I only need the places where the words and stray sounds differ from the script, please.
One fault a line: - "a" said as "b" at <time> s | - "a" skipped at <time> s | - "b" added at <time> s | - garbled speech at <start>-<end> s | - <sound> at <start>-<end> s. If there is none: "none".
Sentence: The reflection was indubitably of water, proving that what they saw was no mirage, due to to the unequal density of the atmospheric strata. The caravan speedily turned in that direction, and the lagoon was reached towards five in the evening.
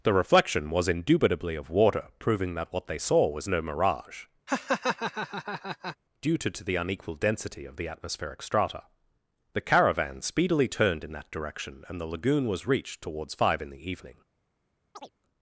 - laugh at 4.5-6.0 s
- chirp at 14.9-15.1 s